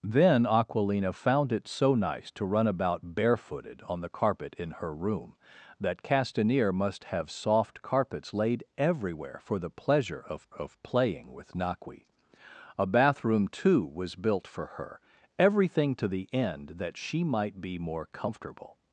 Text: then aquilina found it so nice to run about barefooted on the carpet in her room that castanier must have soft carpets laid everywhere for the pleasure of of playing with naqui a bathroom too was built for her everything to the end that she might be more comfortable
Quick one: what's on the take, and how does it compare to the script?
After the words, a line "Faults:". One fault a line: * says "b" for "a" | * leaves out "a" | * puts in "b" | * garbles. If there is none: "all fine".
then aquilina found it so nice to run about barefooted on the carpet in her room that castanier must have soft carpets laid everywhere for the pleasure of of playing with naqui a bathroom too was built for her everything to the end that she might be more comfortable
Faults:
all fine